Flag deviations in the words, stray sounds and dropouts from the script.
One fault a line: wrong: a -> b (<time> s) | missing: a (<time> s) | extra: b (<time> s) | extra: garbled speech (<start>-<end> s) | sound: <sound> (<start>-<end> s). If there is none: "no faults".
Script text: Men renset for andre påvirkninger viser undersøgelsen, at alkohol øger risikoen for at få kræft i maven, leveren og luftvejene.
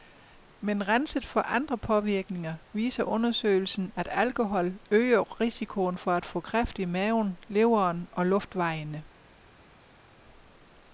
no faults